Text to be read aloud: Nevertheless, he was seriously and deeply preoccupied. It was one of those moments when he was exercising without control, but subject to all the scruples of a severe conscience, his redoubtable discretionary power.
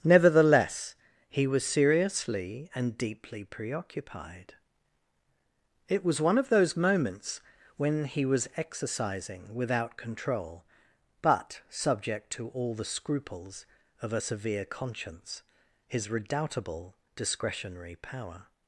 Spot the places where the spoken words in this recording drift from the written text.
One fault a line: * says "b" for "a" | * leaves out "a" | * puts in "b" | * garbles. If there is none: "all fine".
all fine